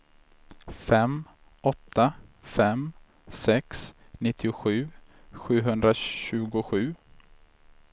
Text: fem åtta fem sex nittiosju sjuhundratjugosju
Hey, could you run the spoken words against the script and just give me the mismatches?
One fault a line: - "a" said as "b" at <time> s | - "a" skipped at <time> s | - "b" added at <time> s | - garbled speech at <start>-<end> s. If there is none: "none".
none